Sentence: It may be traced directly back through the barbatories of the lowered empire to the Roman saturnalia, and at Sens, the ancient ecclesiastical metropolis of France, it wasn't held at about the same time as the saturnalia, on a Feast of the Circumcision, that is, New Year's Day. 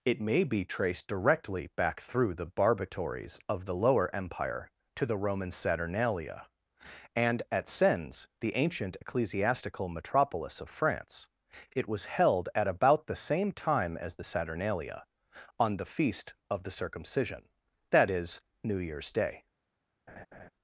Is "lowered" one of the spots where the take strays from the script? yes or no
yes